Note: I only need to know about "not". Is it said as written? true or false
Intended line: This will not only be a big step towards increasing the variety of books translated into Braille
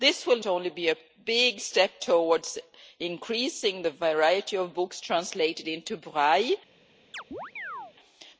false